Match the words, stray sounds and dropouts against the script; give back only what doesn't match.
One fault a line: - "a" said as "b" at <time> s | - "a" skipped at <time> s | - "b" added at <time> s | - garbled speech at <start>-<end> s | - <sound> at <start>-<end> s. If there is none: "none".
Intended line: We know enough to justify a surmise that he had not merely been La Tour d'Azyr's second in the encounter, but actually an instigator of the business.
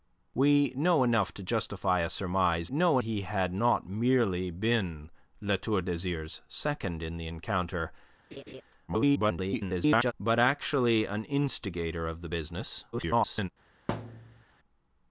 - "that" said as "know" at 2.7 s
- laugh at 8.3-8.6 s
- garbled speech at 8.9-10.1 s
- garbled speech at 12.9-13.5 s
- thud at 13.9-14.4 s